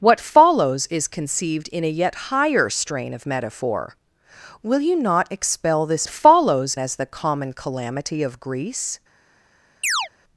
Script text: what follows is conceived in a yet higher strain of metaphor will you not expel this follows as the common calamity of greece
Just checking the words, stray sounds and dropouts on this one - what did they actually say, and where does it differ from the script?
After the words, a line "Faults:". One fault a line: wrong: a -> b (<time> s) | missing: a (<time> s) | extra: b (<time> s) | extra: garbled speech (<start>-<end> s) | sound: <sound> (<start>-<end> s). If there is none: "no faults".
what follows is conceived in a yet higher strain of metaphor will you not expel this follows as the common calamity of greece
Faults:
sound: chirp (9.8-10.1 s)